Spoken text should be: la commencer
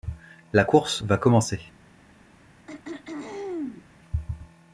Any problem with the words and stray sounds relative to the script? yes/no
yes